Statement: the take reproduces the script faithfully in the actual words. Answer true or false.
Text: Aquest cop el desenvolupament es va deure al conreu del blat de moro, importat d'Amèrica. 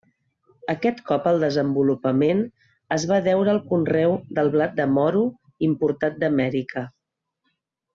true